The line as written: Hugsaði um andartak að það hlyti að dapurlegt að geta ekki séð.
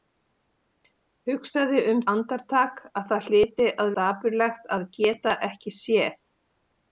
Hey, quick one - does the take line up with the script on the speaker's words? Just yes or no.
yes